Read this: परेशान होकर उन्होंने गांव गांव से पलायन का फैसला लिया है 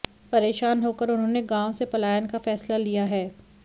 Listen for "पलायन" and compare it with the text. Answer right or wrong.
right